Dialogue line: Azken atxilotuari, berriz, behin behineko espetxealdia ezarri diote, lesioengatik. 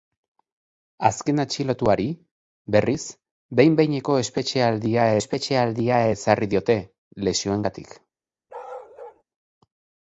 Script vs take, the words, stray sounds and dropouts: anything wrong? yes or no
yes